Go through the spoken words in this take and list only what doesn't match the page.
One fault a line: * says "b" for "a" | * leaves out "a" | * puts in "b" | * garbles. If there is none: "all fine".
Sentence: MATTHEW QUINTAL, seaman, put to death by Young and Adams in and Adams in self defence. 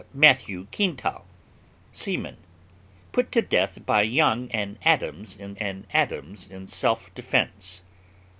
all fine